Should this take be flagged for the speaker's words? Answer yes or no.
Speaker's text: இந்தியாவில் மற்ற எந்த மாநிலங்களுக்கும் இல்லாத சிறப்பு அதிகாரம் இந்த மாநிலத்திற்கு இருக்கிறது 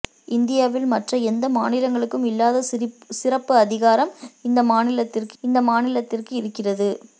yes